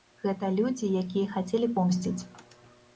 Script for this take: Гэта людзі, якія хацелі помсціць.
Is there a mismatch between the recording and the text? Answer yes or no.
no